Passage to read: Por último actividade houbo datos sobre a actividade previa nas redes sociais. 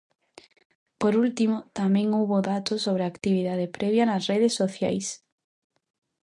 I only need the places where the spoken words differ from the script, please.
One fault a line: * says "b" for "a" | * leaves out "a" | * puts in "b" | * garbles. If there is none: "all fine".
* says "tamén" for "actividade"